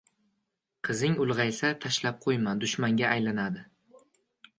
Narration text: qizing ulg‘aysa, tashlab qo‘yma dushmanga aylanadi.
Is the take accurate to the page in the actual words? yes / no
yes